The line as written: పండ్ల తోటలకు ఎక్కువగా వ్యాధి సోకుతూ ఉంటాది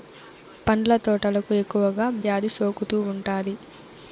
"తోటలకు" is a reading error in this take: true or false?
false